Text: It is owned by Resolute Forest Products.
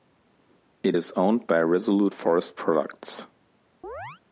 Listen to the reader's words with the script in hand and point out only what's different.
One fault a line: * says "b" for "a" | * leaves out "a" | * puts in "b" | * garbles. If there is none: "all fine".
all fine